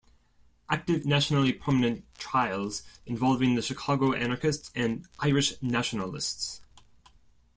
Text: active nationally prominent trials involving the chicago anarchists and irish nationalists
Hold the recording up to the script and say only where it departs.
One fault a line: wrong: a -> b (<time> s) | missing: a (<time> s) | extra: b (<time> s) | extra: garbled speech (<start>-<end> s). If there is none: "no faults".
no faults